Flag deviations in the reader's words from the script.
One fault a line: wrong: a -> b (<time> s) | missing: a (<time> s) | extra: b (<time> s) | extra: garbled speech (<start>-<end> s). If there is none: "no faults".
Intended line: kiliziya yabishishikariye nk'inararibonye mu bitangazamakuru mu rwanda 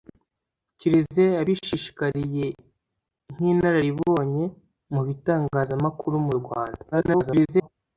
extra: garbled speech (6.9-7.7 s)